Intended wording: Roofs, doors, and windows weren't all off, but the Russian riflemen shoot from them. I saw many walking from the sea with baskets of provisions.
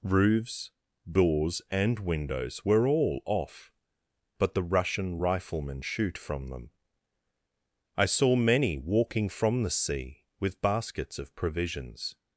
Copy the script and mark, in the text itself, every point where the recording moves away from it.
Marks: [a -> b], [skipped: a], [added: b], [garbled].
Roofs, doors, and windows [weren't -> were] all off, but the Russian riflemen shoot from them. I saw many walking from the sea with baskets of provisions.